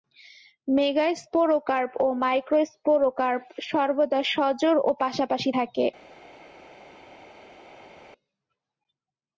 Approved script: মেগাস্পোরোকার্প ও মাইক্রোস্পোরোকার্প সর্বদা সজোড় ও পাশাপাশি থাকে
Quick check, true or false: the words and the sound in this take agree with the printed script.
true